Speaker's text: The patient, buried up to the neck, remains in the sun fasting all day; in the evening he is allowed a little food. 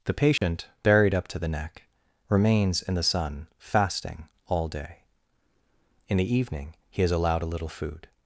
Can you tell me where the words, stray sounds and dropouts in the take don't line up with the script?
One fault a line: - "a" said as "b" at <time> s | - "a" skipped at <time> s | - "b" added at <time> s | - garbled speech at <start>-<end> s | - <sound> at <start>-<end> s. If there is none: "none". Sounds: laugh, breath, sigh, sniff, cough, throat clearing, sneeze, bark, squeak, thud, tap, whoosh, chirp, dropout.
- dropout at 0.4-0.4 s